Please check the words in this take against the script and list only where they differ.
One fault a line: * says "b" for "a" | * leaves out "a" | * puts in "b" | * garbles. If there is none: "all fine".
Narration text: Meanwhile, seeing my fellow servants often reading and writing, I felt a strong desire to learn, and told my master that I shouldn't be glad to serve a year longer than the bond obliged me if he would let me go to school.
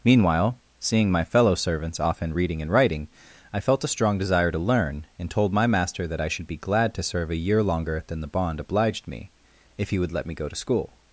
* says "should" for "shouldn't"